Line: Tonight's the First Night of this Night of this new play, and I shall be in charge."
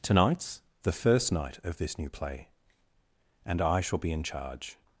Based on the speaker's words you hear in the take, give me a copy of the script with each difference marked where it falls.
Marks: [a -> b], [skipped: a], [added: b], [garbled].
Tonight's the First Night of this [skipped: Night of this] new play, and I shall be in charge."